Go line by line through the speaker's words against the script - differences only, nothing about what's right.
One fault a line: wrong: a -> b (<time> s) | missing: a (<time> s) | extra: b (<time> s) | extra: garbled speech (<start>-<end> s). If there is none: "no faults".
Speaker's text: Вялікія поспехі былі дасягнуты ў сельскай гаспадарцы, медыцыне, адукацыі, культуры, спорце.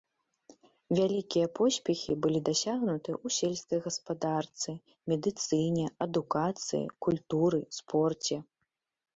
no faults